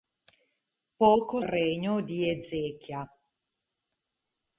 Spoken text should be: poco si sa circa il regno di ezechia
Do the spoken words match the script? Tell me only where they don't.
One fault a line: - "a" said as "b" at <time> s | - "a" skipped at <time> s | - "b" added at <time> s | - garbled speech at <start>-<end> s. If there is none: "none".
- "si sa circa" skipped at 1.4 s